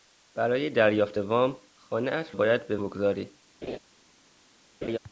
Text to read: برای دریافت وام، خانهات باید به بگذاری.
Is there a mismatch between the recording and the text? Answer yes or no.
no